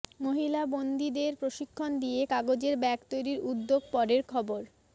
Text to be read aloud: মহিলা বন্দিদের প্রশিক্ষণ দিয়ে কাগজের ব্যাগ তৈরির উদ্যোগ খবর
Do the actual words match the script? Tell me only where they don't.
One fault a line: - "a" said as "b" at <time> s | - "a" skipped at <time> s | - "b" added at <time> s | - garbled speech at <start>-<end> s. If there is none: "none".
- "পরের" added at 3.9 s